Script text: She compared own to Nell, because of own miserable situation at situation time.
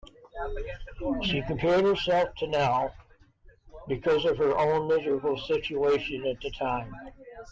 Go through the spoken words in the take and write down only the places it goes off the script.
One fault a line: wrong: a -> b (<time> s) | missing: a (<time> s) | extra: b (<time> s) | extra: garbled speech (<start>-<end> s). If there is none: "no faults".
wrong: own -> herself (1.9 s)
extra: her (4.4 s)
wrong: situation -> the (6.4 s)